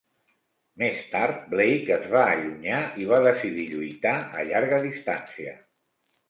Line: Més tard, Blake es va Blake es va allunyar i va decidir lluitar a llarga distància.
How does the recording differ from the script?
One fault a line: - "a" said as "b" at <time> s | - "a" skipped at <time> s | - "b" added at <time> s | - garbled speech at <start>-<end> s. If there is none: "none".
- "Blake es va" skipped at 2.2 s